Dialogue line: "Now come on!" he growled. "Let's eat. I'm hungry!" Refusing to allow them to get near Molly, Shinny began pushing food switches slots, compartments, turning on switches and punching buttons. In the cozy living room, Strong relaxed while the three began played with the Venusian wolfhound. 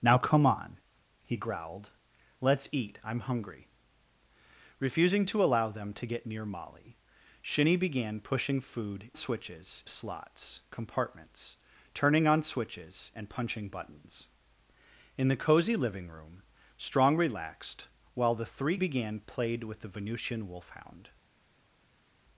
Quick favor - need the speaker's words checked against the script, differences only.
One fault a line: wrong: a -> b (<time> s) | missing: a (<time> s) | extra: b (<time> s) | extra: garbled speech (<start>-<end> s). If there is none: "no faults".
no faults